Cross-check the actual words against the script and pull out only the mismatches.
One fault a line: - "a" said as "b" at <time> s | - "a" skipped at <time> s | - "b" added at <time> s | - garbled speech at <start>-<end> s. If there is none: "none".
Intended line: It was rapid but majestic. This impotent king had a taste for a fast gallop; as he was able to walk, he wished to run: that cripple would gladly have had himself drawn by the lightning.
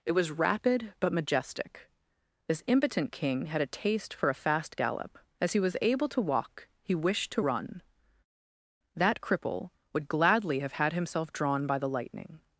none